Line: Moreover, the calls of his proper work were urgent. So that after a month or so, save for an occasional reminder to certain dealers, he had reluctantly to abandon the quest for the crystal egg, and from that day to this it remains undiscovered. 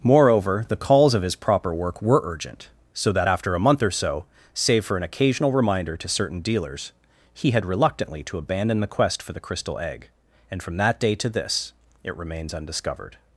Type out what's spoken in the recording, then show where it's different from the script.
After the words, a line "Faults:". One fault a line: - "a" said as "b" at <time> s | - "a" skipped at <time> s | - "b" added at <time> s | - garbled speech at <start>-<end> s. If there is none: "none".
Moreover, the calls of his proper work were urgent. So that after a month or so, save for an occasional reminder to certain dealers, he had reluctantly to abandon the quest for the crystal egg, and from that day to this it remains undiscovered.
Faults:
none